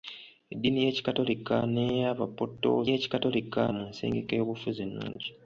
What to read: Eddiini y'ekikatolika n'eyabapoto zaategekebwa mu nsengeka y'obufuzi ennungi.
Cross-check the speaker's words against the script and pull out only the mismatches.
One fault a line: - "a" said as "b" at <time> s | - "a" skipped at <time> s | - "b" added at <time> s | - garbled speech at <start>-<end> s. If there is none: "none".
- "zaategekebwa" said as "y'ekikatolika" at 2.9 s